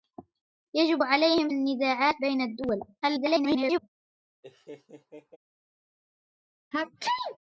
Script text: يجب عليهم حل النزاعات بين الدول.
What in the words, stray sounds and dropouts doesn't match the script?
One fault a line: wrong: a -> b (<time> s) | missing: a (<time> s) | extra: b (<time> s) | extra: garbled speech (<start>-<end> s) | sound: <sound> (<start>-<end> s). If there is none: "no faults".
missing: حل (1.5 s)
extra: garbled speech (3.0-3.9 s)
sound: laugh (4.4-5.4 s)
sound: sneeze (6.7-7.4 s)